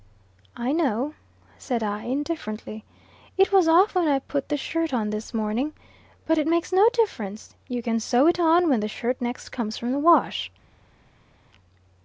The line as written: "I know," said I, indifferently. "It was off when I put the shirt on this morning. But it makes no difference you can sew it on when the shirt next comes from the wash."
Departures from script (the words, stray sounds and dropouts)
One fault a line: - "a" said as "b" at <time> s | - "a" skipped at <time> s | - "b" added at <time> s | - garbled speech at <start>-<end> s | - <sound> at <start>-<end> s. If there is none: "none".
none